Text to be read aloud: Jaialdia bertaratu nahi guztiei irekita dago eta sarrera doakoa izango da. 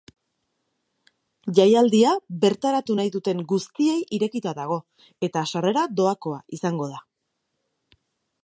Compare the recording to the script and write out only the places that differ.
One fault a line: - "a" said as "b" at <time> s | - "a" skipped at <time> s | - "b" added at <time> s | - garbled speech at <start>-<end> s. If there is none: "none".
- "duten" added at 3.2 s